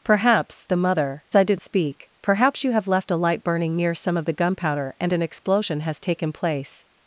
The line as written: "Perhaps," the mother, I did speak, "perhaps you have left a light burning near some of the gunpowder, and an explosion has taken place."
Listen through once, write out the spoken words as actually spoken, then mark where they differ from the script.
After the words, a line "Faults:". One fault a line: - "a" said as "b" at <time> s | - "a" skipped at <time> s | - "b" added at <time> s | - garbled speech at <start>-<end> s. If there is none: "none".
"Perhaps," the mother, I did speak, "perhaps you have left a light burning near some of the gunpowder, and an explosion has taken place."
Faults:
none